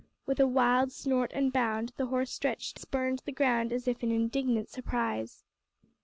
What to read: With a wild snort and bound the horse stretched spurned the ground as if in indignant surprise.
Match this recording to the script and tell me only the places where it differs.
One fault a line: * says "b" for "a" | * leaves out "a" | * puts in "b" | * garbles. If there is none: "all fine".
all fine